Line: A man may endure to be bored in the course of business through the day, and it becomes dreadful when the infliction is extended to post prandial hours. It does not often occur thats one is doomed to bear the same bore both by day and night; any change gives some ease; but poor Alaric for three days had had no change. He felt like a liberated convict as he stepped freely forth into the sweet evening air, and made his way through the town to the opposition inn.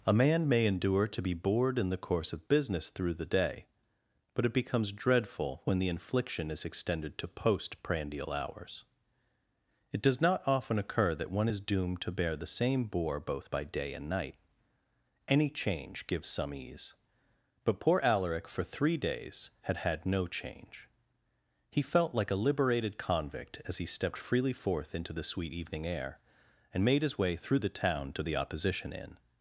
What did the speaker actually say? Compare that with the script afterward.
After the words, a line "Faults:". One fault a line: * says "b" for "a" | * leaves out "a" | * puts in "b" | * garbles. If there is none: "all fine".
A man may endure to be bored in the course of business through the day, but it becomes dreadful when the infliction is extended to post prandial hours. It does not often occur that one is doomed to bear the same bore both by day and night; any change gives some ease; but poor Alaric for three days had had no change. He felt like a liberated convict as he stepped freely forth into the sweet evening air, and made his way through the town to the opposition inn.
Faults:
* says "but" for "and"
* says "that" for "thats"